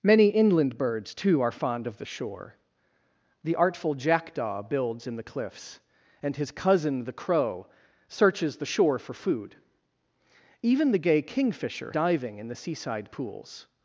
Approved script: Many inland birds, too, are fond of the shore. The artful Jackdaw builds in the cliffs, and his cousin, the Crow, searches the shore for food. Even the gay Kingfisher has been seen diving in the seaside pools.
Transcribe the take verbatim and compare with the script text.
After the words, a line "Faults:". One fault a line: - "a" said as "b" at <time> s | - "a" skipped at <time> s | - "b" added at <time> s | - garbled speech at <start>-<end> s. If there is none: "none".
Many inland birds, too, are fond of the shore. The artful Jackdaw builds in the cliffs, and his cousin, the Crow, searches the shore for food. Even the gay Kingfisher diving in the seaside pools.
Faults:
- "has been seen" skipped at 11.9 s